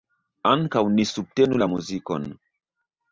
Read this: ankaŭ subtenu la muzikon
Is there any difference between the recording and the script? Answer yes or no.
yes